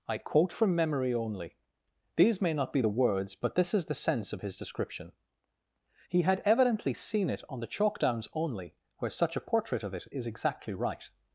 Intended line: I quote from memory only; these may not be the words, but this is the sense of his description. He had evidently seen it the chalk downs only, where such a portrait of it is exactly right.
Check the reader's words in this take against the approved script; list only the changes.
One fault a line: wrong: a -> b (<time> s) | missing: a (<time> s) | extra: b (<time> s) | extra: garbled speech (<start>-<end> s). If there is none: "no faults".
extra: on (7.5 s)